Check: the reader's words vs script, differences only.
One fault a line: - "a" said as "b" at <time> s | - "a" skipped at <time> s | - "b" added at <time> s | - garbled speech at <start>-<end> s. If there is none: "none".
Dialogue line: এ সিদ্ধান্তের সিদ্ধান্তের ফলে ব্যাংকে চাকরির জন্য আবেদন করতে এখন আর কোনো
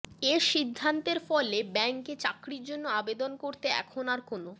- "সিদ্ধান্তের" skipped at 1.2 s